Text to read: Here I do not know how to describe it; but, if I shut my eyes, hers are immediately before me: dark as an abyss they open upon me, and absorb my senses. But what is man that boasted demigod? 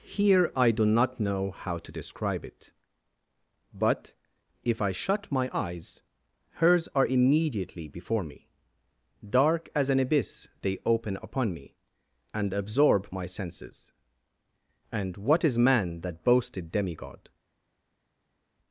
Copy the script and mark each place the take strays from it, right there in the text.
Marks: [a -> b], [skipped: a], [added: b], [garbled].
Here I do not know how to describe it; but, if I shut my eyes, hers are immediately before me: dark as an abyss they open upon me, and absorb my senses. [But -> And] what is man that boasted demigod?